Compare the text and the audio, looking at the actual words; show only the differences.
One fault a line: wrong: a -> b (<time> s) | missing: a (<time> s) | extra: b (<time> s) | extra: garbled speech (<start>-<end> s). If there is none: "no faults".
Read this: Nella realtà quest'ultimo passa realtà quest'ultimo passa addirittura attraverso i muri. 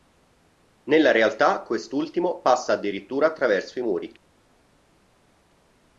missing: realtà quest'ultimo passa (2.7 s)